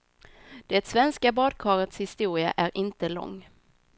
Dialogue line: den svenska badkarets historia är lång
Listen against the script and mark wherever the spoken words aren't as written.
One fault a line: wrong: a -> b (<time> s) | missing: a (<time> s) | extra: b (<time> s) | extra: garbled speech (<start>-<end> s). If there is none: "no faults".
wrong: den -> det (0.7 s)
extra: inte (2.8 s)